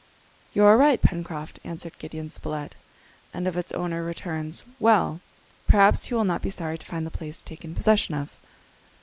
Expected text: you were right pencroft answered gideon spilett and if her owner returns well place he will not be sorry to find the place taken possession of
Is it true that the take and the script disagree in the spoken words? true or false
true